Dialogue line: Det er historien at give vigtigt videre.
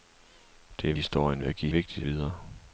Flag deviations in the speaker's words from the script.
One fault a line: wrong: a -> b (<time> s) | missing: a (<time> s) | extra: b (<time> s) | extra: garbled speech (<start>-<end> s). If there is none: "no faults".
no faults